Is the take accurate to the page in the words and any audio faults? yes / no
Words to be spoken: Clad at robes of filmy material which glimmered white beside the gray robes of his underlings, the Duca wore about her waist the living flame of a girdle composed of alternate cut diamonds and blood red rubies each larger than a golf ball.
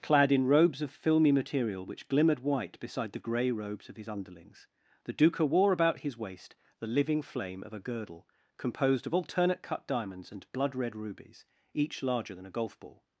no